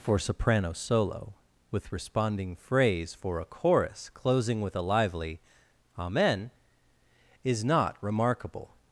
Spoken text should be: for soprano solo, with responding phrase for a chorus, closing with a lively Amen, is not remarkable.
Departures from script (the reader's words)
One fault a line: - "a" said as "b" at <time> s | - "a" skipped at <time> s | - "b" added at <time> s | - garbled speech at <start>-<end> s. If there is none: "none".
none